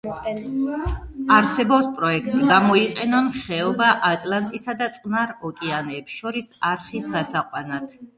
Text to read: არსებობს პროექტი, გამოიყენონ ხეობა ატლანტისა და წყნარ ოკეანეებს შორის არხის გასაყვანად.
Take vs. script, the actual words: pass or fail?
pass